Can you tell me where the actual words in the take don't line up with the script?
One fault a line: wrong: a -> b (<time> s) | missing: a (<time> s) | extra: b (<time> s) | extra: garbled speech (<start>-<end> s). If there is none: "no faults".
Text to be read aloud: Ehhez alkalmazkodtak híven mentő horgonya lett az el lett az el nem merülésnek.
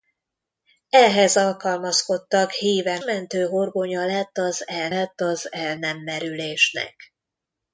no faults